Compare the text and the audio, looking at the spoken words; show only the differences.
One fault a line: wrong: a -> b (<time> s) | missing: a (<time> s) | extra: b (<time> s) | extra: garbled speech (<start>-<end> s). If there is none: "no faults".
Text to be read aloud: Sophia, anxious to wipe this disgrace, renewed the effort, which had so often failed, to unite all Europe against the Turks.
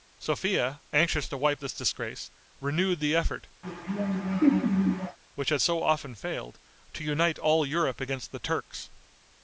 no faults